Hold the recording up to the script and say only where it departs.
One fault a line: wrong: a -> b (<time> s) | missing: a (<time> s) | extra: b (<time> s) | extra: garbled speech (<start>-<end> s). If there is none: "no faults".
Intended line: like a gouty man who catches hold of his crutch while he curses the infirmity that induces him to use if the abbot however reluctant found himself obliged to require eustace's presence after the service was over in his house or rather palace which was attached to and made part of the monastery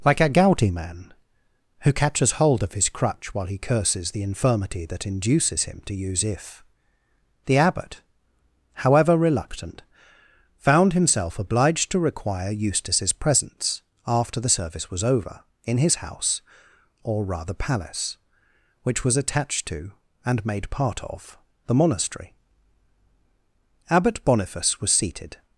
extra: abbot boniface was seated (23.9 s)